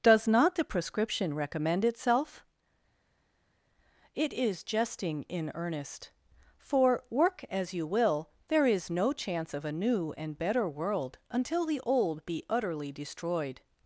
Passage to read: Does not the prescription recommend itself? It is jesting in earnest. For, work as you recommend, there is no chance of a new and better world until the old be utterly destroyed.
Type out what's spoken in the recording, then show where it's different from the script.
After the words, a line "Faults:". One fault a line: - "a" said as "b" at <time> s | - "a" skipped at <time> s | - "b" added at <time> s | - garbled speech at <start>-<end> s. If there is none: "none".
Does not the prescription recommend itself? It is jesting in earnest. For, work as you will, there is no chance of a new and better world until the old be utterly destroyed.
Faults:
- "recommend" said as "will" at 7.8 s